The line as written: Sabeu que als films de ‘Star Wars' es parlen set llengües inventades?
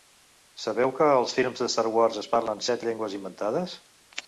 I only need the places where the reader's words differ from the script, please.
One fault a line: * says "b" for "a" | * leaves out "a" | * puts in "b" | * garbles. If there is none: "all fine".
all fine